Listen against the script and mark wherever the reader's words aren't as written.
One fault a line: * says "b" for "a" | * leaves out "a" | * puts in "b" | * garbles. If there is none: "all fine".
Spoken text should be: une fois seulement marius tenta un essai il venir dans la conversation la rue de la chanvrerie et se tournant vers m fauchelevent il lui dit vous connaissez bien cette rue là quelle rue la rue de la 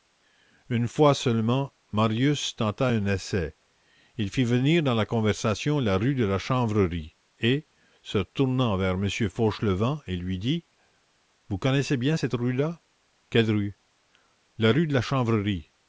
* puts in "fit"